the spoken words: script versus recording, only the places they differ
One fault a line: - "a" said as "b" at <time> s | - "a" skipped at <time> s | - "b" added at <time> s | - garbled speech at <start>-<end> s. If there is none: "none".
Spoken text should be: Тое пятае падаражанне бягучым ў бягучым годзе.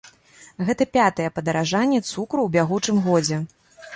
- "Тое" said as "Гэта" at 0.7 s
- "бягучым" said as "цукру" at 2.1 s